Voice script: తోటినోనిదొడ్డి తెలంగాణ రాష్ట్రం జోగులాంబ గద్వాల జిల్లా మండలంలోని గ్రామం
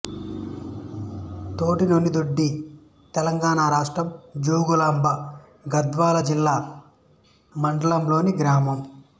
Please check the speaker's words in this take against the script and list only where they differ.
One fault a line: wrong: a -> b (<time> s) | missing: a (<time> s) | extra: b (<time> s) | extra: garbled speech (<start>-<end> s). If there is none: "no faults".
no faults